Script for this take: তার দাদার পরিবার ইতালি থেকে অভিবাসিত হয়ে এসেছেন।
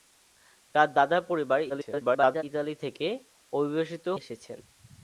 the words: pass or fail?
fail